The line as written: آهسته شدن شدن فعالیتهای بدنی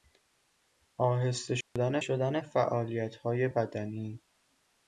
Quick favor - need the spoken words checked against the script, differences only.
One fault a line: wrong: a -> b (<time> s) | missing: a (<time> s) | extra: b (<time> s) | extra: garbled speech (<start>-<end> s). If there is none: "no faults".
no faults